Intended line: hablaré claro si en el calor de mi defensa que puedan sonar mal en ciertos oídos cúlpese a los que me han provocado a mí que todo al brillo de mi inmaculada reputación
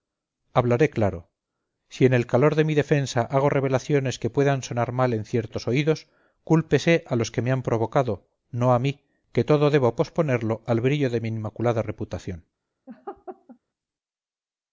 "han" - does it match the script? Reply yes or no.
yes